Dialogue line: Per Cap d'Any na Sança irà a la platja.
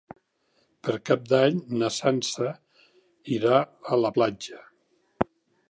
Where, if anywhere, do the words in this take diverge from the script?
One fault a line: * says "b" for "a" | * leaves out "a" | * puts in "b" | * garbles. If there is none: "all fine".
all fine